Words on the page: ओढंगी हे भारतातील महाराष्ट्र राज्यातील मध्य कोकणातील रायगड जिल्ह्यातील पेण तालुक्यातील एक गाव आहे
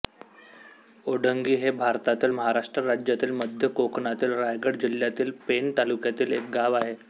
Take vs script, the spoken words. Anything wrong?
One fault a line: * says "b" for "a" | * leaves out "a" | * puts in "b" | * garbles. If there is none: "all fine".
all fine